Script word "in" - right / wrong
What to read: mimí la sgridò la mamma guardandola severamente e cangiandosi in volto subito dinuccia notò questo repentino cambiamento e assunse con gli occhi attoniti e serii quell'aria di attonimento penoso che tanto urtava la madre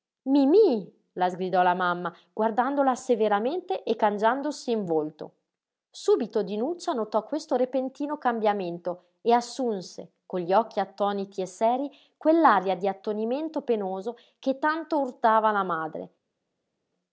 right